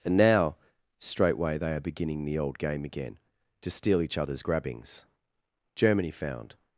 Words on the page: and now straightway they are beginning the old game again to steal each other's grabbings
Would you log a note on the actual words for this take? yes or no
yes